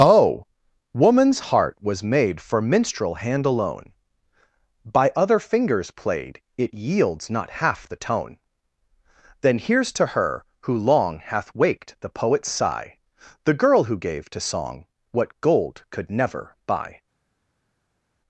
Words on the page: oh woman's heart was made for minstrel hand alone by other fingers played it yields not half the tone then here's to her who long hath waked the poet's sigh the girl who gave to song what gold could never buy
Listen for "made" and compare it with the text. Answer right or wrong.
right